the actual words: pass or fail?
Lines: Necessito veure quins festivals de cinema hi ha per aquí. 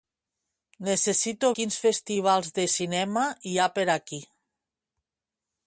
fail